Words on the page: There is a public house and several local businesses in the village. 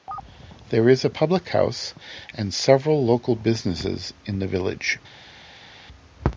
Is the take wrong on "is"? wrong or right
right